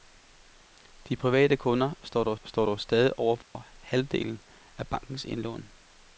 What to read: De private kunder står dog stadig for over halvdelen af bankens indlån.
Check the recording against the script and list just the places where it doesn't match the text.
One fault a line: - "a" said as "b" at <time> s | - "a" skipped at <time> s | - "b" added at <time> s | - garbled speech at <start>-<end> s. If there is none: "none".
- "står dog" added at 2.4 s